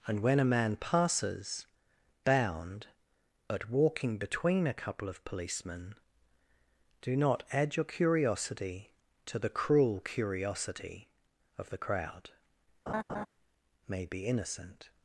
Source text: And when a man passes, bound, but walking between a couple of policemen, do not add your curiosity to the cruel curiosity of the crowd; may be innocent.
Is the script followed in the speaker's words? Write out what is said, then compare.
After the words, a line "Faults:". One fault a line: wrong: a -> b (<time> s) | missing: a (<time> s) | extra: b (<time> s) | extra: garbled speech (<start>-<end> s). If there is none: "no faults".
And when a man passes, bound, but walking between a couple of policemen, do not add your curiosity to the cruel curiosity of the crowd; may be innocent.
Faults:
no faults